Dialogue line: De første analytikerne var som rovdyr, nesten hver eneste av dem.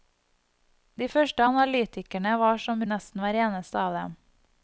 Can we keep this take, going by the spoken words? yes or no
no